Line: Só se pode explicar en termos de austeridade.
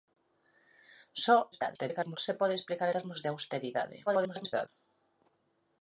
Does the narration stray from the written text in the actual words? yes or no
yes